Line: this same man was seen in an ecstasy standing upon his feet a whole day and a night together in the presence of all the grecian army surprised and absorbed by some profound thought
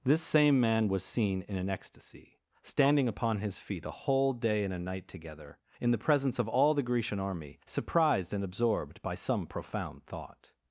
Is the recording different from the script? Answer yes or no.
no